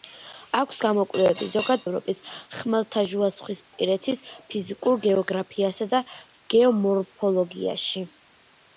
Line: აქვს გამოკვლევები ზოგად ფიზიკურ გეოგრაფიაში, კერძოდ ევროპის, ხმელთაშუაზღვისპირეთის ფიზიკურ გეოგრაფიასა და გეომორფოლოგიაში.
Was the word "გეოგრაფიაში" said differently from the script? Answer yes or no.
yes